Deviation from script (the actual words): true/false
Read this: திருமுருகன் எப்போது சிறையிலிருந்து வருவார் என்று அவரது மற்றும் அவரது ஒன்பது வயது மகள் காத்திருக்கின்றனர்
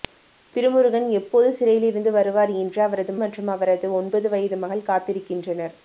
false